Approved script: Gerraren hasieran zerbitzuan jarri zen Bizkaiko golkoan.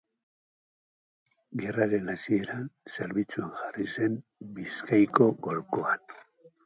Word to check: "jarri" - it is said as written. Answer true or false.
true